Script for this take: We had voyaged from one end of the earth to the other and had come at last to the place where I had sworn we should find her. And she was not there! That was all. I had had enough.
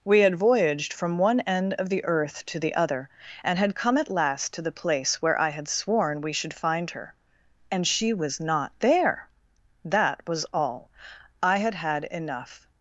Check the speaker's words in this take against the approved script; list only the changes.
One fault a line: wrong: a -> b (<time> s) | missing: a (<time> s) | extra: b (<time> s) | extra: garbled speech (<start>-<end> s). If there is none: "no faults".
no faults